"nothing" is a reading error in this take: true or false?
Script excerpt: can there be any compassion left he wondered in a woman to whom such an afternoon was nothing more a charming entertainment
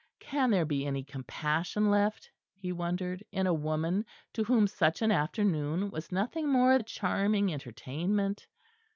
false